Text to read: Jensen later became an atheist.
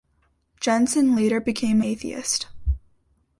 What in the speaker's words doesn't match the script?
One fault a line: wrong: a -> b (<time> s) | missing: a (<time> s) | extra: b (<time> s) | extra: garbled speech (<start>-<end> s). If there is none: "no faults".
missing: an (1.8 s)